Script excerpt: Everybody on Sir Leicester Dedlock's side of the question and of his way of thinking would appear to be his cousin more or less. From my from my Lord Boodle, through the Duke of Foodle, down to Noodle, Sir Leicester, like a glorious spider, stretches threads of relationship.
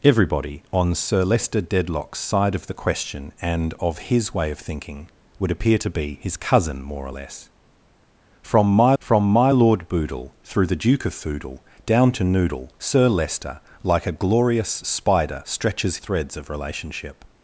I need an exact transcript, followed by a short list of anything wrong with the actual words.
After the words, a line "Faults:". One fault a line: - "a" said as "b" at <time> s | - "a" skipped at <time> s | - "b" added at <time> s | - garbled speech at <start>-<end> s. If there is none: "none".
Everybody on Sir Leicester Dedlock's side of the question and of his way of thinking would appear to be his cousin more or less. From my from my Lord Boodle, through the Duke of Foodle, down to Noodle, Sir Leicester, like a glorious spider, stretches threads of relationship.
Faults:
none